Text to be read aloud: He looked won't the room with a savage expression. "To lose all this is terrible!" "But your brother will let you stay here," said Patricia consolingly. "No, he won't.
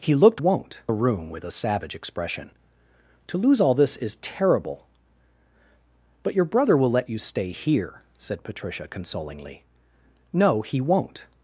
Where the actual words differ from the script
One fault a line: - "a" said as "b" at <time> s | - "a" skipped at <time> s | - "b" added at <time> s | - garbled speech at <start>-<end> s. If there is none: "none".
none